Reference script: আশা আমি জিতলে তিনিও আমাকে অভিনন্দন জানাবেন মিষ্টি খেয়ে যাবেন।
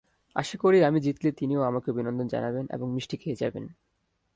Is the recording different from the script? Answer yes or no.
yes